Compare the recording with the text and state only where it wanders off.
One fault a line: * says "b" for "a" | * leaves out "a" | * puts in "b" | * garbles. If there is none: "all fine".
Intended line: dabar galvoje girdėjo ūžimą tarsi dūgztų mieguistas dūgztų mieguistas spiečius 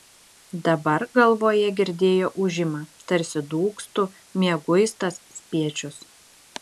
* leaves out "dūgztų mieguistas"